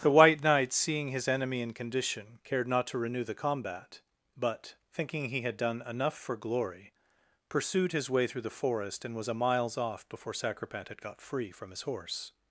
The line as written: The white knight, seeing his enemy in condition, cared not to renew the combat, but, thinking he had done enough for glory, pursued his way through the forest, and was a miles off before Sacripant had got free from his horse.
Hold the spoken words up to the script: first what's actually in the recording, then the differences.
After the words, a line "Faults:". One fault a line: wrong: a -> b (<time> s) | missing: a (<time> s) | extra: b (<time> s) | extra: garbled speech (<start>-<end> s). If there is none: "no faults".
The white knight, seeing his enemy in condition, cared not to renew the combat, but, thinking he had done enough for glory, pursued his way through the forest, and was a miles off before Sacripant had got free from his horse.
Faults:
no faults